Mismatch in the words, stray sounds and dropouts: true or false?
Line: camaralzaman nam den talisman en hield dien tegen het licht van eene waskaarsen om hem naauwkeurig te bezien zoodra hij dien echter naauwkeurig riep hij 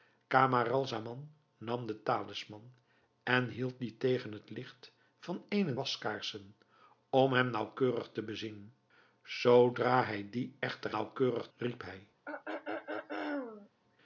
true